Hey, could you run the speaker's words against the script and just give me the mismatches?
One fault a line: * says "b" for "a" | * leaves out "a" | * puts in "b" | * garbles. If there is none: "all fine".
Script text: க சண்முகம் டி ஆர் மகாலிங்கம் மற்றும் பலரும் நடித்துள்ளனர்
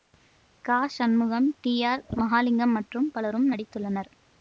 all fine